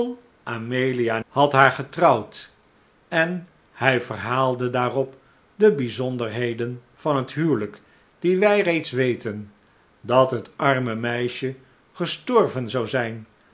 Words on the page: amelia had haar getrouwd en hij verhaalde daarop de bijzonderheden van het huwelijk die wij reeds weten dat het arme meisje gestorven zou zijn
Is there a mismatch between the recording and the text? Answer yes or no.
no